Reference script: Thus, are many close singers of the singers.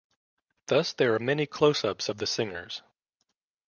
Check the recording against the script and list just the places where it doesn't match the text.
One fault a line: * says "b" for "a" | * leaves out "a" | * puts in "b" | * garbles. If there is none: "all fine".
* puts in "there"
* says "ups" for "singers"